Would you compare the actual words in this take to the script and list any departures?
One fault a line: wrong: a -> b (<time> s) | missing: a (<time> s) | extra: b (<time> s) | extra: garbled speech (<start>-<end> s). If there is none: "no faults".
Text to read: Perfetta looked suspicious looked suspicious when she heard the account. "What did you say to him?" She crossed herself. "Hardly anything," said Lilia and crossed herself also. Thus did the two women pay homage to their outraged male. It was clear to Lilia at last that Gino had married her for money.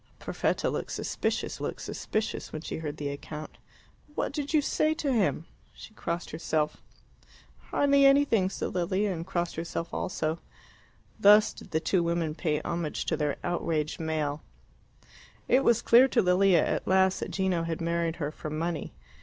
no faults